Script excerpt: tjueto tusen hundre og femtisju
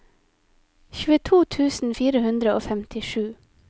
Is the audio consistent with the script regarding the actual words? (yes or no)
no